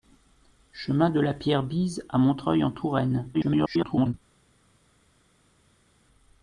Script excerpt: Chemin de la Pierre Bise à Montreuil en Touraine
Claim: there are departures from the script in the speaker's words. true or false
true